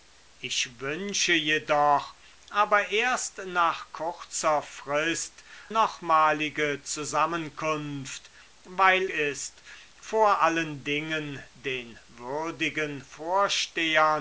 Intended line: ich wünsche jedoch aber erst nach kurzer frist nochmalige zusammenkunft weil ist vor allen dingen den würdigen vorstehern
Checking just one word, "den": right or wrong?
right